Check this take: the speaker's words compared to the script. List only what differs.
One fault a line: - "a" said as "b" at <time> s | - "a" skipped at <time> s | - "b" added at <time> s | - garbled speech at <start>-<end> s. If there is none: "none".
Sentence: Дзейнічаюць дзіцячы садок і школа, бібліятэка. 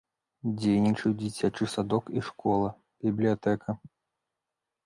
none